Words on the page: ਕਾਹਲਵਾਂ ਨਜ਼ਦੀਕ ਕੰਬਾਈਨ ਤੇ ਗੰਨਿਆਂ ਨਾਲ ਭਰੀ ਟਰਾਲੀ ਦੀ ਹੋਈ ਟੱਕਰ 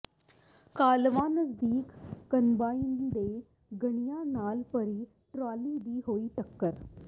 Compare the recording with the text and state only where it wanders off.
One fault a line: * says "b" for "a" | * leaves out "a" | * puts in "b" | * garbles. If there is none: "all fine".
all fine